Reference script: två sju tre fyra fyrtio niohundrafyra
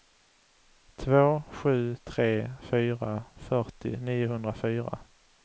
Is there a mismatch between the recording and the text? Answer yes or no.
no